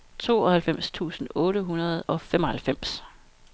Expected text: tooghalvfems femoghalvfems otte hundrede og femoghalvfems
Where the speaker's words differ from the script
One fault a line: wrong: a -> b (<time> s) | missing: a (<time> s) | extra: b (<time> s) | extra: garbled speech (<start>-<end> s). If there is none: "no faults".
wrong: femoghalvfems -> tusind (0.9 s)